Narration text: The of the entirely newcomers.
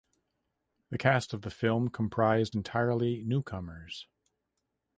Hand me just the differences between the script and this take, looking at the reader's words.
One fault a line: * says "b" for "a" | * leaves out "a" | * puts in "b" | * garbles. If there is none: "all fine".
* puts in "cast"
* puts in "film comprised"